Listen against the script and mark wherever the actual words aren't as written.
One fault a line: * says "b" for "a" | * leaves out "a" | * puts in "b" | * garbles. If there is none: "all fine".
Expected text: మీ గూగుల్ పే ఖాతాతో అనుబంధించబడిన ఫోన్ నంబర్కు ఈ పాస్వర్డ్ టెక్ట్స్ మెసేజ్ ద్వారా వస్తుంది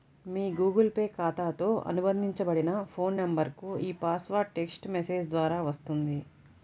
all fine